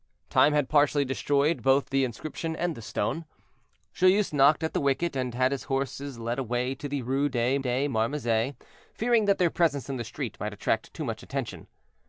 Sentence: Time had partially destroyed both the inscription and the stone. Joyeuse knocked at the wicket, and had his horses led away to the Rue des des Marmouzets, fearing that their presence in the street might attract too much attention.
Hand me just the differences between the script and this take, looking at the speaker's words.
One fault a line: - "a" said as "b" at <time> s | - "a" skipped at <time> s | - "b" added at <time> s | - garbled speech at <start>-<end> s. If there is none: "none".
none